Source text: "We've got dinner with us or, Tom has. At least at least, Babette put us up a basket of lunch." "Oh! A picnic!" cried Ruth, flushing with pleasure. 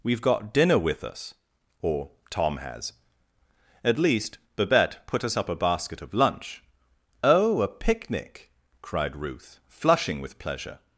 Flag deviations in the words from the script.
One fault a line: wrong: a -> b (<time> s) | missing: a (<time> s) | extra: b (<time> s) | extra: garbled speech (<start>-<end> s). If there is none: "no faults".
missing: at least (4.4 s)